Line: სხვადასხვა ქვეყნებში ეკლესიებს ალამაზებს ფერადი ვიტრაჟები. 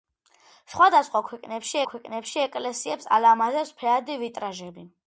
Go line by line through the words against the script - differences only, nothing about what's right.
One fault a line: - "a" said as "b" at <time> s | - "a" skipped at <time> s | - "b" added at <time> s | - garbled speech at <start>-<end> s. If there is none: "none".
- "ქვეყნებში" added at 1.9 s